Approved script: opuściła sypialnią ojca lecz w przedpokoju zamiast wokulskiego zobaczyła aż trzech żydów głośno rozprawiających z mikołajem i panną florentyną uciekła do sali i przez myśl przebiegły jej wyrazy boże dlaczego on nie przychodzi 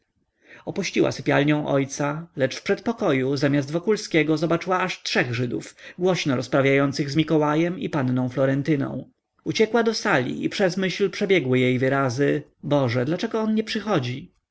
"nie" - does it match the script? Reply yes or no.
yes